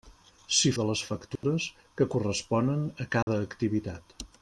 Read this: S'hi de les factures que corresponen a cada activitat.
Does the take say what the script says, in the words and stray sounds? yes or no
no